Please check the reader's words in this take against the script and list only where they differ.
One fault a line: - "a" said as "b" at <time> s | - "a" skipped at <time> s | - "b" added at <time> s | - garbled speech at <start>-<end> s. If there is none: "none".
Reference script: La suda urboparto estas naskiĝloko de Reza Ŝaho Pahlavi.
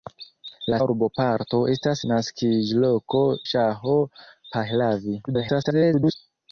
- "suda" skipped at 0.8 s
- "de Reza" skipped at 3.2 s
- garbled speech at 5.3-6.1 s